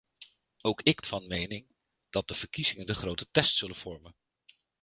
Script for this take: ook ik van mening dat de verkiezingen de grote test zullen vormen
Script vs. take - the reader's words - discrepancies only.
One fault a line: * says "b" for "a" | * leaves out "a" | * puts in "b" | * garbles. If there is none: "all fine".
all fine